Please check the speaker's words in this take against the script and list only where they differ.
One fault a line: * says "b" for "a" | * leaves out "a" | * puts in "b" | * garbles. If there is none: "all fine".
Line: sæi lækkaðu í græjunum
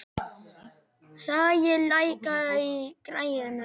all fine